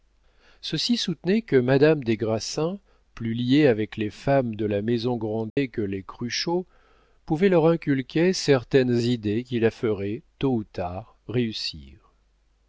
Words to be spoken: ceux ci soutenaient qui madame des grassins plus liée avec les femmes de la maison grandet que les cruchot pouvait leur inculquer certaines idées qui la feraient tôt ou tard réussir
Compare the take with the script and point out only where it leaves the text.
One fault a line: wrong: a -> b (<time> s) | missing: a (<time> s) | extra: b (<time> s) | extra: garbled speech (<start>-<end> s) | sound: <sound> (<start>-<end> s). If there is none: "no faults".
wrong: qui -> que (1.4 s)
sound: dropout (5.5-5.6 s)